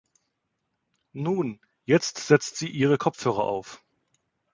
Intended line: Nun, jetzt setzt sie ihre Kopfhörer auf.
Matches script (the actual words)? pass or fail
pass